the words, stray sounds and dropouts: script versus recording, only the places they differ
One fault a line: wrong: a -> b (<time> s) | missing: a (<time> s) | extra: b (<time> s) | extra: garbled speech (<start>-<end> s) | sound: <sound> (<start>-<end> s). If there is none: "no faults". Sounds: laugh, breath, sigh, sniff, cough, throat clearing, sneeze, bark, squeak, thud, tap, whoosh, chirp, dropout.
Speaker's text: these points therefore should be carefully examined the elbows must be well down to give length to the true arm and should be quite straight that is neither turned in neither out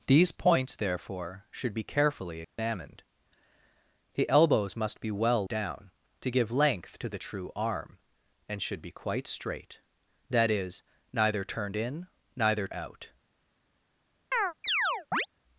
sound: dropout (2.4-2.6 s)
sound: chirp (14.3-15.3 s)